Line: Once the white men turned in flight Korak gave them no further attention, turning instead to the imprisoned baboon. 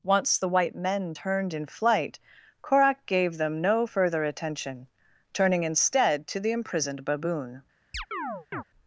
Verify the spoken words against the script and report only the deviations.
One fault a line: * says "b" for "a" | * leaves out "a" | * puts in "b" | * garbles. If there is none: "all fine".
all fine